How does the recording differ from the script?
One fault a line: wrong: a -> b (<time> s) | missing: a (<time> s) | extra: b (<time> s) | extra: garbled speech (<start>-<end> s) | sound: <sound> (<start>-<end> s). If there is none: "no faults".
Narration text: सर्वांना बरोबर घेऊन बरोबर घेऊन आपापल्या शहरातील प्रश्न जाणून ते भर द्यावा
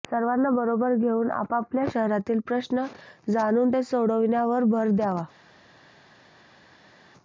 missing: बरोबर घेऊन (1.3 s)
extra: सोडविण्यावर (3.8 s)